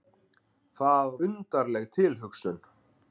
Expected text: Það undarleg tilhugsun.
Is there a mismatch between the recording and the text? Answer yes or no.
no